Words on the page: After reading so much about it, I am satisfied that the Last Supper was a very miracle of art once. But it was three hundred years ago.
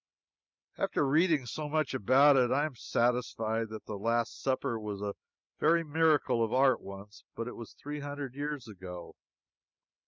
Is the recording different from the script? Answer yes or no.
no